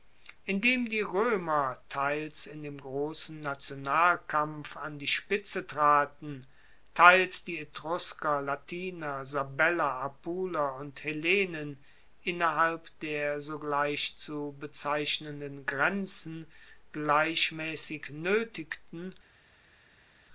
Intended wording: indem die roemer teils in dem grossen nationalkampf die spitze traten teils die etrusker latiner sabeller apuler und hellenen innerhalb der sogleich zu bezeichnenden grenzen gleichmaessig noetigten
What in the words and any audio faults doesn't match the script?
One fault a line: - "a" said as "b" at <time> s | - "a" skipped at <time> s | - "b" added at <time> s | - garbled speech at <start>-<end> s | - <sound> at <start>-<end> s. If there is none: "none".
- "an" added at 4.8 s